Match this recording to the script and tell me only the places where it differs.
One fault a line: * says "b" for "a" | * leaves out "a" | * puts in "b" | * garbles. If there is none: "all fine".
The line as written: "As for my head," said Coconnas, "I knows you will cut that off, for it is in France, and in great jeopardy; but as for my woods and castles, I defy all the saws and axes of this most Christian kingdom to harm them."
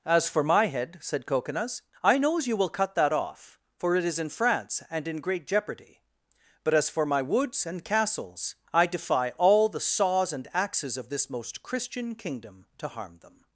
all fine